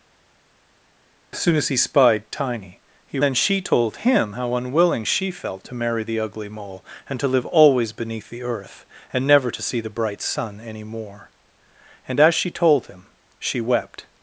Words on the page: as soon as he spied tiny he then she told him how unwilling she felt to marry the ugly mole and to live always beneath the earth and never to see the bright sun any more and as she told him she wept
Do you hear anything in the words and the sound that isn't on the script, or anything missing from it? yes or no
no